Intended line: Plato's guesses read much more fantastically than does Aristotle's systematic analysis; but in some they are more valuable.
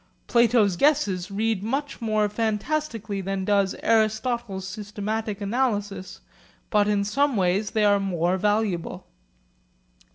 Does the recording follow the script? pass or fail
fail